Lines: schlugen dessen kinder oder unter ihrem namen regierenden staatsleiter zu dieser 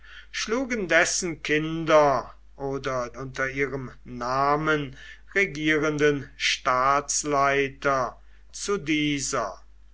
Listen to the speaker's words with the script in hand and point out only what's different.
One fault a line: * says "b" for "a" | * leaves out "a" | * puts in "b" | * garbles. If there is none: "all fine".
all fine